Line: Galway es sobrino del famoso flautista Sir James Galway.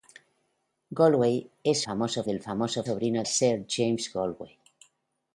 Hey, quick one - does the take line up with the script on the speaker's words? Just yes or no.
no